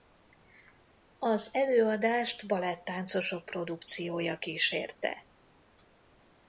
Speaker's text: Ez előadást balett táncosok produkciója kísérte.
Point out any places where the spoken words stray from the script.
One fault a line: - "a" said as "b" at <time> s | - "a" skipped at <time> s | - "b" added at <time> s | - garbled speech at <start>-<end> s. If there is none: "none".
- "Ez" said as "Az" at 1.2 s